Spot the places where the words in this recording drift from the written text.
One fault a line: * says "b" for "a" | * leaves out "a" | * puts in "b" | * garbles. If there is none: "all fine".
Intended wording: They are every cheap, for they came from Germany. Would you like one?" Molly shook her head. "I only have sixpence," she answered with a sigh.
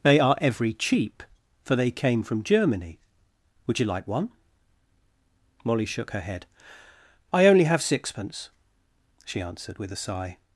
all fine